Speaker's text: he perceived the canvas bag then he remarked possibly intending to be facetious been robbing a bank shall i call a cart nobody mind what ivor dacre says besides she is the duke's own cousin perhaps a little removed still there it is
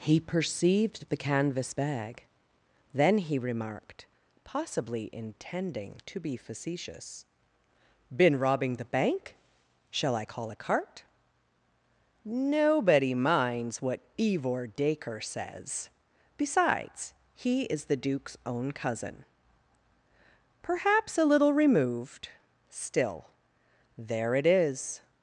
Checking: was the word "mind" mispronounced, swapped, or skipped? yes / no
yes